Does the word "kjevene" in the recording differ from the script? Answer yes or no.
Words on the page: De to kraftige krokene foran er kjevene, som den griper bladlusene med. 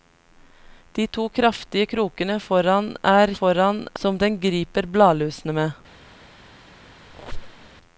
yes